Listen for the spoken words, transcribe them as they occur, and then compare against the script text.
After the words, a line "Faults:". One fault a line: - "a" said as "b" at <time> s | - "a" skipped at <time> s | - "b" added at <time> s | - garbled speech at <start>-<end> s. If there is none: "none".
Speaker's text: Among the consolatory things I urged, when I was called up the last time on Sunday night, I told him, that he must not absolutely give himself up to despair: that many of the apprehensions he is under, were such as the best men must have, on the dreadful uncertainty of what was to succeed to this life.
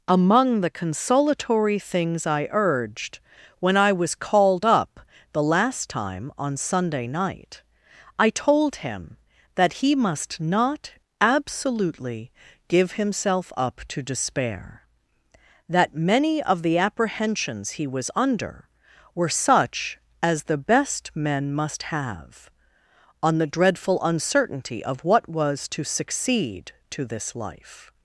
Among the consolatory things I urged, when I was called up the last time on Sunday night, I told him, that he must not absolutely give himself up to despair: that many of the apprehensions he was under, were such as the best men must have, on the dreadful uncertainty of what was to succeed to this life.
Faults:
- "is" said as "was" at 17.8 s